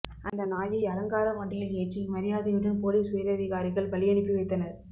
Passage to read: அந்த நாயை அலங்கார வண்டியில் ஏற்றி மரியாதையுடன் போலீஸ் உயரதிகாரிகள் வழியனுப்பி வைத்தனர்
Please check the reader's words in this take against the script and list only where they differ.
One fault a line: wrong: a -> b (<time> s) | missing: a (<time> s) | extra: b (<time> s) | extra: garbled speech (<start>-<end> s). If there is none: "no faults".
no faults